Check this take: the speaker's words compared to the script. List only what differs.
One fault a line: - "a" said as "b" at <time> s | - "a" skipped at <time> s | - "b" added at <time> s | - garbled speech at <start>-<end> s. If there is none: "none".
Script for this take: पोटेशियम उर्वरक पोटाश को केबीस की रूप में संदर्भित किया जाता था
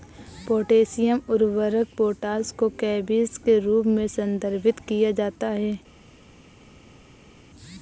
- "की" said as "के" at 3.4 s
- "था" said as "है" at 5.5 s